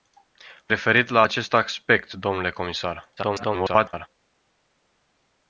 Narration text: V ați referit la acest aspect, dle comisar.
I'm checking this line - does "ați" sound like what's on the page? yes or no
no